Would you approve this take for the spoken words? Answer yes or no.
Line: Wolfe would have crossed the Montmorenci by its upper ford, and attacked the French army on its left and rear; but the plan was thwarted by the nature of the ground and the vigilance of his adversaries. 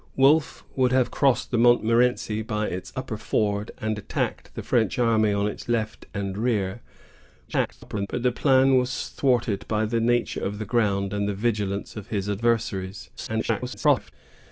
no